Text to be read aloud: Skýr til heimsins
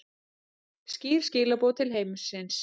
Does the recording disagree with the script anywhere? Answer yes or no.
yes